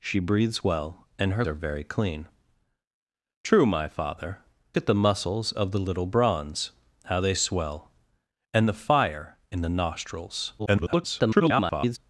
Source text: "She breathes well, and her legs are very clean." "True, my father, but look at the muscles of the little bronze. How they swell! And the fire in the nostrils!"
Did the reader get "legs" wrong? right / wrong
wrong